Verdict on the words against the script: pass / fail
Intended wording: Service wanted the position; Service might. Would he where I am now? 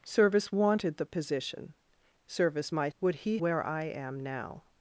pass